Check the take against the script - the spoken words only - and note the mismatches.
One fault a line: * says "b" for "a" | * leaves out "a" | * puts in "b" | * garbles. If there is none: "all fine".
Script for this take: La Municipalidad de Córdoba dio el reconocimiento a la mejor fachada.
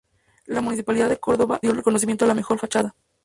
all fine